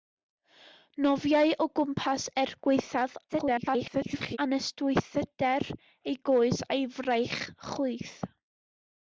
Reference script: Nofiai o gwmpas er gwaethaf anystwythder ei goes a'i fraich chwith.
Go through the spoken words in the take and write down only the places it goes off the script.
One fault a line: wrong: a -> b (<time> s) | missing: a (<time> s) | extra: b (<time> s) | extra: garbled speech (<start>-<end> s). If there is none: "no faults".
extra: garbled speech (3.3-4.4 s)